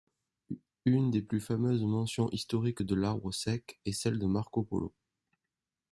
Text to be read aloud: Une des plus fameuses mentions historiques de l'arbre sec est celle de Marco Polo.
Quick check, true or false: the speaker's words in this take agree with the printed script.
true